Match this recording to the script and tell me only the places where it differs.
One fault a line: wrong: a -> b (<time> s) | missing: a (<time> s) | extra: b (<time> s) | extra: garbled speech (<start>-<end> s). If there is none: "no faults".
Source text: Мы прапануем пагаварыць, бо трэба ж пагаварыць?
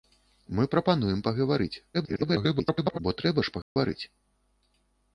extra: garbled speech (1.9-3.0 s)